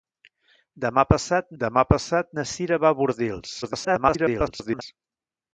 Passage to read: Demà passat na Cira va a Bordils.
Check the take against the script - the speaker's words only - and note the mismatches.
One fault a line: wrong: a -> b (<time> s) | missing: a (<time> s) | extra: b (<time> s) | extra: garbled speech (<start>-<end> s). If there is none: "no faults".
extra: demà passat (1.6 s)
extra: garbled speech (3.6-4.8 s)